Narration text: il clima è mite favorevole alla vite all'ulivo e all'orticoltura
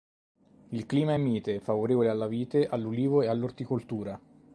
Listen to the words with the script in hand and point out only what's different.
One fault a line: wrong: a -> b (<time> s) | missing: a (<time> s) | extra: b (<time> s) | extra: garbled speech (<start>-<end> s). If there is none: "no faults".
no faults